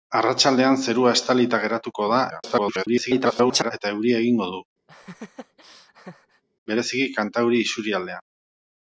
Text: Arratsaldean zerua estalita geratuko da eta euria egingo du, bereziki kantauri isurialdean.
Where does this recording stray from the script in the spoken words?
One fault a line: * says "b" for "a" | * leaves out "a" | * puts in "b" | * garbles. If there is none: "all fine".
* garbles